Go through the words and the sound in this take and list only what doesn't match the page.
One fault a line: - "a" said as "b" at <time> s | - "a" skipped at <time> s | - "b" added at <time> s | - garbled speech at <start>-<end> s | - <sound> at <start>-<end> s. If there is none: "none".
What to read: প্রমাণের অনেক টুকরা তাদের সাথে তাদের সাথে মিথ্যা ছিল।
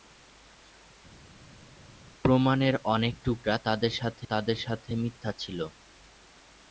none